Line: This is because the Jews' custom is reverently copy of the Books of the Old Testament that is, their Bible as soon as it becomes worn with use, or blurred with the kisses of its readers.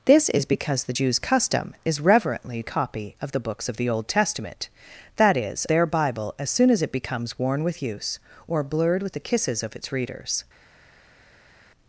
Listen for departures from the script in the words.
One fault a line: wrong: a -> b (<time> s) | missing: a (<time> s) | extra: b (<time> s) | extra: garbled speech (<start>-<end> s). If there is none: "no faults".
no faults